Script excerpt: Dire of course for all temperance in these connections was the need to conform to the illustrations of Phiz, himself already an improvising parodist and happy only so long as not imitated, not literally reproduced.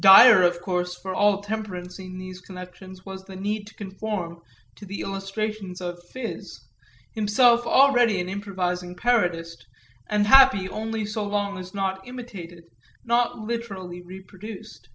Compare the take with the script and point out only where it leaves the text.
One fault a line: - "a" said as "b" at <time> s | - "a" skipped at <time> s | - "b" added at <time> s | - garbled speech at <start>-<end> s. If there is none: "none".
none